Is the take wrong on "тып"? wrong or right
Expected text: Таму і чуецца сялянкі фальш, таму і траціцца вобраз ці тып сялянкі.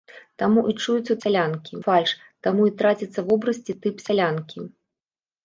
right